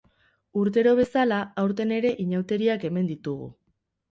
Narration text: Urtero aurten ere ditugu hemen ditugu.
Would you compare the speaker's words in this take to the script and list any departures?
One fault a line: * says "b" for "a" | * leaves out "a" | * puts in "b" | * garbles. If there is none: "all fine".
* puts in "bezala"
* says "inauteriak" for "ditugu"